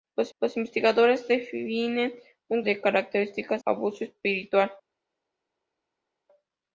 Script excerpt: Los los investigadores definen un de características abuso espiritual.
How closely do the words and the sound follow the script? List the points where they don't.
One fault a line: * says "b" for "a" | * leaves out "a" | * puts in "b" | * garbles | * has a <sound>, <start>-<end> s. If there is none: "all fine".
all fine